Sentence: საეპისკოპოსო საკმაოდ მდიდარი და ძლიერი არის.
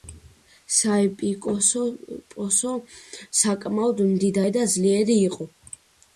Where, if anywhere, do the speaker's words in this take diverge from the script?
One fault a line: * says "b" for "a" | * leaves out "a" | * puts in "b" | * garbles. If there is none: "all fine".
* says "იყო" for "არის"